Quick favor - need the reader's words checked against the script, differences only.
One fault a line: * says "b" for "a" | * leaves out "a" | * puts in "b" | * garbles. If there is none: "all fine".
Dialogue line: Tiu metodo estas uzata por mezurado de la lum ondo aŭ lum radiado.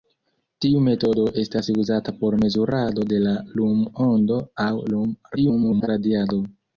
* garbles